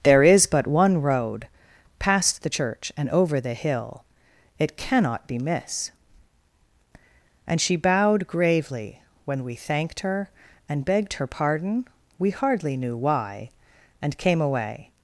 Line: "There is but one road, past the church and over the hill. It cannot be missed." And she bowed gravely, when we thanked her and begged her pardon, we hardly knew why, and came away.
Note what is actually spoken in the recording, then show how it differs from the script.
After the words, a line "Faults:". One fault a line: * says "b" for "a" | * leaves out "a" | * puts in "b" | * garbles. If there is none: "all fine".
"There is but one road, past the church and over the hill. It cannot be miss." And she bowed gravely, when we thanked her and begged her pardon, we hardly knew why, and came away.
Faults:
* says "miss" for "missed"